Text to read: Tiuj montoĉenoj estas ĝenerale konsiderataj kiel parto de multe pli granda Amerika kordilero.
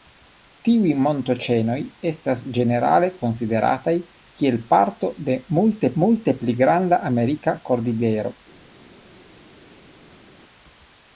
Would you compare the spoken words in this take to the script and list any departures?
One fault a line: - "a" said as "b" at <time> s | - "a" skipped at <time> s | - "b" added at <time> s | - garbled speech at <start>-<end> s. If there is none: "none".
- "multe" added at 6.0 s